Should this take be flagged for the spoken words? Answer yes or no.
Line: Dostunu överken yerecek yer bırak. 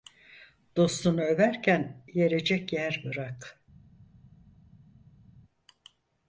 no